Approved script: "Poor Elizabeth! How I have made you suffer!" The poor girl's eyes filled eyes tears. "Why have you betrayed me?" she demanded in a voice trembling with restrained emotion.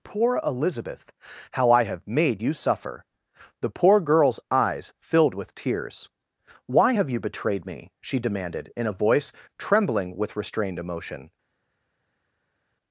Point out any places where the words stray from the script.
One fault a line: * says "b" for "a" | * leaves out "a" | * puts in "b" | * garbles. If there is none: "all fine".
* says "with" for "eyes"